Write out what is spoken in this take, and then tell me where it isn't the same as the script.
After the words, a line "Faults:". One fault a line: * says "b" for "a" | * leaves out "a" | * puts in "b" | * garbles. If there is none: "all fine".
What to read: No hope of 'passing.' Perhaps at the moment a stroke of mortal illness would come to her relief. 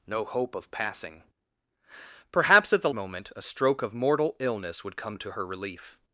No hope of 'passing.' Perhaps at the moment a stroke of mortal illness would come to her relief.
Faults:
all fine